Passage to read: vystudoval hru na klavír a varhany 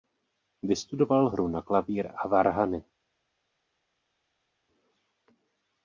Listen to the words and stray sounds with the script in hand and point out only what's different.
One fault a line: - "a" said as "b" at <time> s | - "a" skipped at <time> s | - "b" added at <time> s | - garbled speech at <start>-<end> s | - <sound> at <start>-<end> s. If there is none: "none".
none